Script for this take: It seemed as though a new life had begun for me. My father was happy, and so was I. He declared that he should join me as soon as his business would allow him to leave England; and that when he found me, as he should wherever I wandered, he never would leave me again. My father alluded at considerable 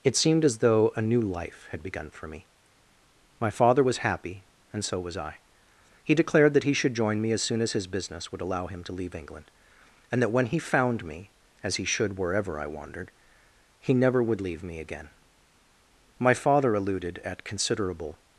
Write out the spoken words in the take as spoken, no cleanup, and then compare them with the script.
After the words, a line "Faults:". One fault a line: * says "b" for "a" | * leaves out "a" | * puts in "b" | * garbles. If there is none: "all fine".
It seemed as though a new life had begun for me. My father was happy, and so was I. He declared that he should join me as soon as his business would allow him to leave England; and that when he found me, as he should wherever I wandered, he never would leave me again. My father alluded at considerable
Faults:
all fine